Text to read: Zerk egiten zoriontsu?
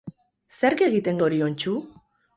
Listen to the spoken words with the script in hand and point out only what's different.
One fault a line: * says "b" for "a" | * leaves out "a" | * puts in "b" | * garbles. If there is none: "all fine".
all fine